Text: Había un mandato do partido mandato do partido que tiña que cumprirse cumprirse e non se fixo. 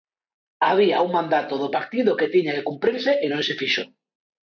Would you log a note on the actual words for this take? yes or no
yes